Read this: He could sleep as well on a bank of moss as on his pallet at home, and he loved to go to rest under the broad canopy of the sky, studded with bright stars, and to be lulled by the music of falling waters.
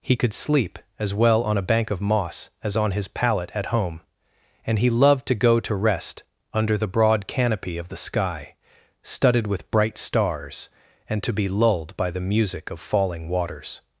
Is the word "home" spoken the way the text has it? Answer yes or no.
yes